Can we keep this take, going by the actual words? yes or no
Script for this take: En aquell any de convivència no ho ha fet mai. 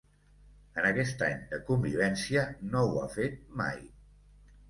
no